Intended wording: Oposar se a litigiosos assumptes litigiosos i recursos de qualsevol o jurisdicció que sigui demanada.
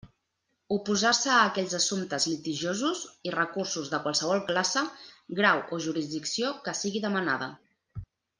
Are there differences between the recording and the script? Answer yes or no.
yes